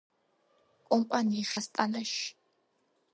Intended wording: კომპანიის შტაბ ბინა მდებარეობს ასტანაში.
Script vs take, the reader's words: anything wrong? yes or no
yes